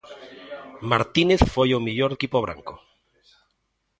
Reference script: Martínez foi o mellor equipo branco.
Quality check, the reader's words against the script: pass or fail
pass